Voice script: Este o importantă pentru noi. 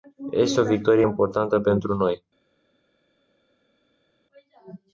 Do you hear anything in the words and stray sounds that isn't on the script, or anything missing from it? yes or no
yes